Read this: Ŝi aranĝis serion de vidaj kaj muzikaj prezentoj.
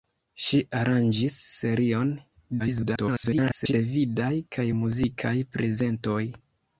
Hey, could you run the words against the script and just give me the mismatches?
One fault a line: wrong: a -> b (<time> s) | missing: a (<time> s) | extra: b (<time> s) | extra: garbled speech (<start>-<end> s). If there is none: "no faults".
extra: garbled speech (2.6-3.7 s)